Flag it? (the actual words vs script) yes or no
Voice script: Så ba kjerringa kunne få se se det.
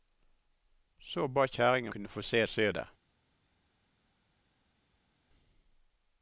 no